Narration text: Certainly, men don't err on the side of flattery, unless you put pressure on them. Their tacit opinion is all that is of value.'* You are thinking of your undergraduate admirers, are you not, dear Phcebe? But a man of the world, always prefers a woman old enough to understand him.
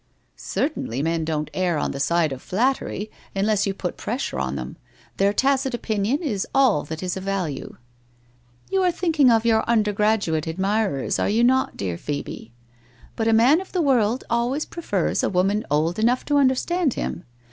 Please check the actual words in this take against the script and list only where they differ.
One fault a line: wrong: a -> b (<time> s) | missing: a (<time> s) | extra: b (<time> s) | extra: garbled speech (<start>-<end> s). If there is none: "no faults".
no faults